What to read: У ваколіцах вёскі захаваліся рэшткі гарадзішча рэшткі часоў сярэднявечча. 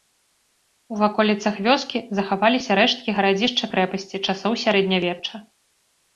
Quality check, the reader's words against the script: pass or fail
fail